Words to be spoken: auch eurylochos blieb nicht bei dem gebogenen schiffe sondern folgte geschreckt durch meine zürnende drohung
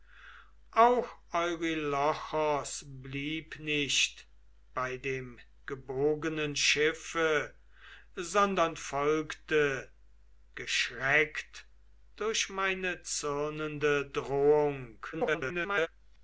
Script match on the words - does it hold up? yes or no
no